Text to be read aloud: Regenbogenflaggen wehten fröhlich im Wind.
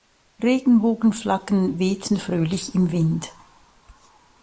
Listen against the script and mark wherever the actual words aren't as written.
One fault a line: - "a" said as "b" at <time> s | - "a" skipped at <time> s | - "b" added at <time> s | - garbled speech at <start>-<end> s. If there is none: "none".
none